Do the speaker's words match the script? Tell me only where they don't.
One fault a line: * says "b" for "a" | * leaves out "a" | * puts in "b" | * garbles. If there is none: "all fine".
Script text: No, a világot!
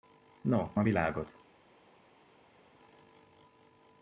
all fine